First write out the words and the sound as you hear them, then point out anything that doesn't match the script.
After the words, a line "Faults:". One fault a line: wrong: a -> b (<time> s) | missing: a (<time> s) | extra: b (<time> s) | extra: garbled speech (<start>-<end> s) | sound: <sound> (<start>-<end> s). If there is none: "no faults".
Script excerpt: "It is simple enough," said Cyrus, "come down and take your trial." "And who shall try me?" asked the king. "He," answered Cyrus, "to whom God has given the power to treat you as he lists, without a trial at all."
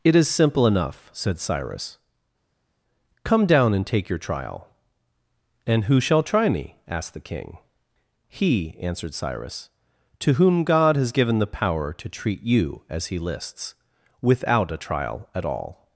"It is simple enough," said Cyrus, "come down and take your trial." "And who shall try me?" asked the king. "He," answered Cyrus, "to whom God has given the power to treat you as he lists, without a trial at all."
Faults:
no faults